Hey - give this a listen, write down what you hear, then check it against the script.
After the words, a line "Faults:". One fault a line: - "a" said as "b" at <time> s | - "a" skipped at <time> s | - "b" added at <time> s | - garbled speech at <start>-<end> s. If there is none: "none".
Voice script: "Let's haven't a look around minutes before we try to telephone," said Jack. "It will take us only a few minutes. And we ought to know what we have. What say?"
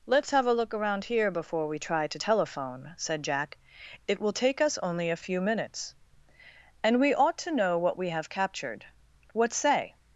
"Let's have a look around here before we try to telephone," said Jack. "It will take us only a few minutes. And we ought to know what we have captured. What say?"
Faults:
- "haven't" said as "have" at 0.3 s
- "minutes" said as "here" at 1.0 s
- "captured" added at 8.3 s